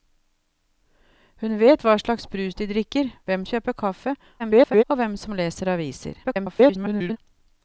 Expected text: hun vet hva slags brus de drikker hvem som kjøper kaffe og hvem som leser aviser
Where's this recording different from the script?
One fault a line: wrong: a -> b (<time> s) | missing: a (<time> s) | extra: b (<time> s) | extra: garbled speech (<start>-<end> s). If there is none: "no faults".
missing: som (3.5 s)
extra: garbled speech (4.4-4.8 s)
extra: garbled speech (6.2-7.2 s)